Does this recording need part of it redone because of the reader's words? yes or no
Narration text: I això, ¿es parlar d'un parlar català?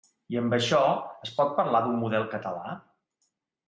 yes